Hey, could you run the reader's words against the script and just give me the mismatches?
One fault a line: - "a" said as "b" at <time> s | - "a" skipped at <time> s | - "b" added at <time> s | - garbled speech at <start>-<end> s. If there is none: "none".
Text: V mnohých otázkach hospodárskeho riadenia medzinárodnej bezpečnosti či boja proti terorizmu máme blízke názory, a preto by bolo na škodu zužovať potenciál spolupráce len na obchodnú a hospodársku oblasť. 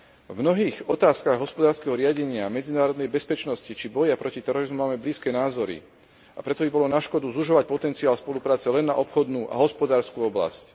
none